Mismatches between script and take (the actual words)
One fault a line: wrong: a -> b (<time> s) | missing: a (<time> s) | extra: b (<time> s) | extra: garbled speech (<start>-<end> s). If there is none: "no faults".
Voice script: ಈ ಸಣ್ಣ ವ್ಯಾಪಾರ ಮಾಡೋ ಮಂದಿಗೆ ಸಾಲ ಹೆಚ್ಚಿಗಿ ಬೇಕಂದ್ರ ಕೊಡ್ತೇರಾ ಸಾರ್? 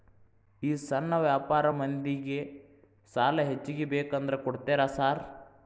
missing: ಮಾಡೋ (1.7 s)